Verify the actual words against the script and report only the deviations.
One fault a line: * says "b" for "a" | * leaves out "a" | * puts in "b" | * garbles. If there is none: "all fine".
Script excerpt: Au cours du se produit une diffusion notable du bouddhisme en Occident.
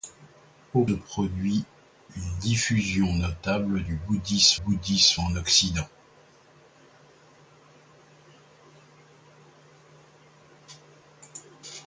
* leaves out "cours du se"
* puts in "bouddhisme"